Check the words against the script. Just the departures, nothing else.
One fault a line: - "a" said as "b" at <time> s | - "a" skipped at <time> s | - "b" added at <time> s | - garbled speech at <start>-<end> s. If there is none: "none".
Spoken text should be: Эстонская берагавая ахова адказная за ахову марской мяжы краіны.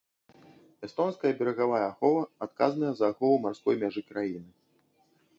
none